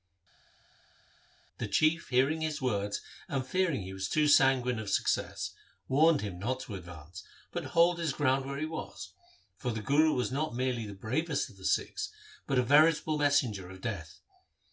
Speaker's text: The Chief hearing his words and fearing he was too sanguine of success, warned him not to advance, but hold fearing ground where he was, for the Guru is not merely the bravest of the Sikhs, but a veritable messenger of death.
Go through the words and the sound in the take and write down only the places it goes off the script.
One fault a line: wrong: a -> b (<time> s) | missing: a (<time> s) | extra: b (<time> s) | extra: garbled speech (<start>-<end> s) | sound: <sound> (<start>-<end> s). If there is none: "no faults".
wrong: fearing -> his (8.0 s)
wrong: is -> was (10.1 s)